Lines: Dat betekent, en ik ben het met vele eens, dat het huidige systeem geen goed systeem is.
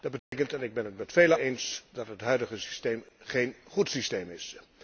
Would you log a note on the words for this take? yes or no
no